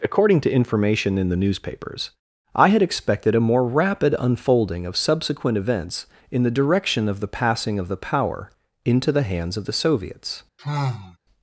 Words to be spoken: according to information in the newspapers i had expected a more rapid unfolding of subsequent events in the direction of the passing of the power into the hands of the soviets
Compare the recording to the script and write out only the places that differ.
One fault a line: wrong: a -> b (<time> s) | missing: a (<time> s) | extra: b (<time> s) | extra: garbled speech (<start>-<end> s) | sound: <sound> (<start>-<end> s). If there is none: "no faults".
sound: sigh (10.6-11.2 s)